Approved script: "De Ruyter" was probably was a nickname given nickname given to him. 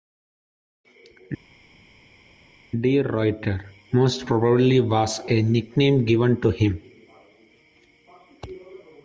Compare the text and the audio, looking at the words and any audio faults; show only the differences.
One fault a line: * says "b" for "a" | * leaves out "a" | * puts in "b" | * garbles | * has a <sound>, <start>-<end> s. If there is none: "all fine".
* says "most" for "was"
* leaves out "nickname given"